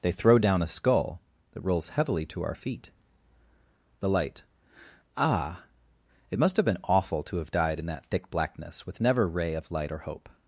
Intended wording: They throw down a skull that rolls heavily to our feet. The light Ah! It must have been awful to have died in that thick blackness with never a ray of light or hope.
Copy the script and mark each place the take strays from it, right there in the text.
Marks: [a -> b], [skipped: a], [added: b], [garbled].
They throw down a skull that rolls heavily to our feet. The light Ah! It must have been awful to have died in that thick blackness with never [skipped: a] ray of light or hope.